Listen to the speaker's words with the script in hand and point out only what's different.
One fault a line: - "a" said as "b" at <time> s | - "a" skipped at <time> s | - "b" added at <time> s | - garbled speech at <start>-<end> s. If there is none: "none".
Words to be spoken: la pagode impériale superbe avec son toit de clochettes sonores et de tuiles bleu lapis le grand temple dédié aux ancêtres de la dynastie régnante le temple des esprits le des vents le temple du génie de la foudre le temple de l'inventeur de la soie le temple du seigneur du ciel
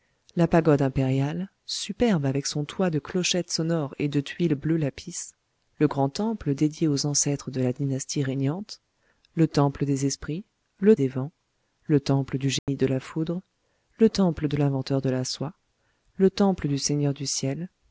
none